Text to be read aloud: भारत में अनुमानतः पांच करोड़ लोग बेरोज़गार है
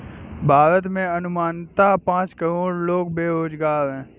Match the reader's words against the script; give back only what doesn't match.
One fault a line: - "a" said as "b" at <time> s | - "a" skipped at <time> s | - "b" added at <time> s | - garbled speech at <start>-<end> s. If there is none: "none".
none